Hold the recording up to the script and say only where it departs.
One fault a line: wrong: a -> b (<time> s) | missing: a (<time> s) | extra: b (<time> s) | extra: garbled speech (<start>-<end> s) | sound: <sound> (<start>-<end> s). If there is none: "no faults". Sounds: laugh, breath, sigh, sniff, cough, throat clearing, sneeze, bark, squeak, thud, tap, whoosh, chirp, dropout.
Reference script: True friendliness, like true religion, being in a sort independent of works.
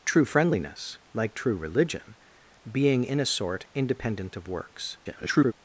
extra: garbled speech (5.0-5.5 s)